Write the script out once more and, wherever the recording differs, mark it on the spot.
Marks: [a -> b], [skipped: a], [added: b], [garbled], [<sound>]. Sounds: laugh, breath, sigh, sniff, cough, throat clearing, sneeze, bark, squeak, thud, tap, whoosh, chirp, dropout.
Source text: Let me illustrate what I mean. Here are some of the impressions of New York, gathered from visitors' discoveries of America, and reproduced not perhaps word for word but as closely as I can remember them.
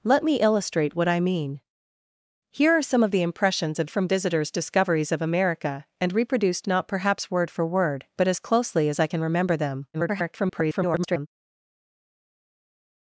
Let me illustrate what I mean. Here are some of the impressions of [skipped: New York, gathered] from visitors' discoveries of America, and reproduced not perhaps word for word but as closely as I can remember them. [garbled]